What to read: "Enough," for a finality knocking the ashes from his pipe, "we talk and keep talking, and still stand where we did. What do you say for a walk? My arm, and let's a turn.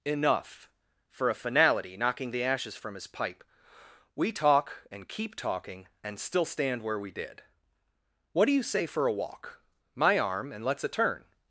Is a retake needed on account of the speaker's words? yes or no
no